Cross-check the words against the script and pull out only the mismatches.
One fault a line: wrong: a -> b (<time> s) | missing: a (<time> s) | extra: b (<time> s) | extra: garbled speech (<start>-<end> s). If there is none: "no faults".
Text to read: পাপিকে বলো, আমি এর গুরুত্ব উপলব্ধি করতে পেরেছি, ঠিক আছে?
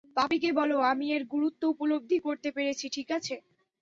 no faults